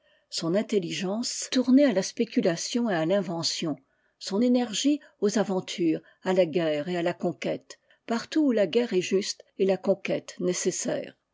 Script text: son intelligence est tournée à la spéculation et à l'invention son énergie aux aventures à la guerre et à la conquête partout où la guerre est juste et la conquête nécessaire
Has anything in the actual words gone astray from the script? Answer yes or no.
yes